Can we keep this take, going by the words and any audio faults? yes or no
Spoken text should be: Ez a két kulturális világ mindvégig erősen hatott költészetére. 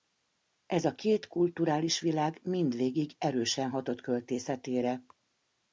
yes